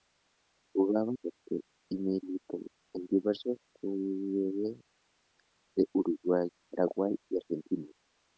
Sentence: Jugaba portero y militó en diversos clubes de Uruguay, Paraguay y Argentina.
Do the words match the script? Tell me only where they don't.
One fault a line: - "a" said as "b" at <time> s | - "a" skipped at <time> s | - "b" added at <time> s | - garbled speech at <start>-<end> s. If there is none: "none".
none